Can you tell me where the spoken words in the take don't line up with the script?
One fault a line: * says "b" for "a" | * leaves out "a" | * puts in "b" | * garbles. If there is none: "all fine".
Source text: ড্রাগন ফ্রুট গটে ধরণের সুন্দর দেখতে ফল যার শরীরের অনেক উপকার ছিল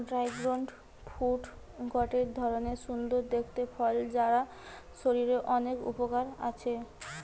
* says "আছে" for "ছিল"